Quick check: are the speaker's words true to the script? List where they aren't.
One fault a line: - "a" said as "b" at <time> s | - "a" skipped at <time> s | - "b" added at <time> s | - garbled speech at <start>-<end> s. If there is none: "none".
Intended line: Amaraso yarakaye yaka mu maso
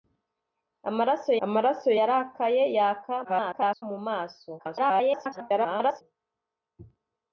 - "amaraso" added at 1.4 s
- garbled speech at 3.2-3.8 s
- garbled speech at 4.6-6.0 s